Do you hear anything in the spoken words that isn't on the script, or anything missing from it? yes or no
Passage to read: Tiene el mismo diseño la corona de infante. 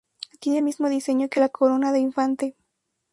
yes